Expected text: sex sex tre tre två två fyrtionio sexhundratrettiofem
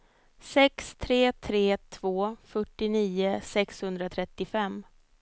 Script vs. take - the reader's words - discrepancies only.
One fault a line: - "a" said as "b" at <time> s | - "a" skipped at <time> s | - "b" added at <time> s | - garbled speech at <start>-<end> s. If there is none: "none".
- "sex" skipped at 0.9 s
- "två" skipped at 2.4 s